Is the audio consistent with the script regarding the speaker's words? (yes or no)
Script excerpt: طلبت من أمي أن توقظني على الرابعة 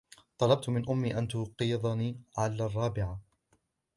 yes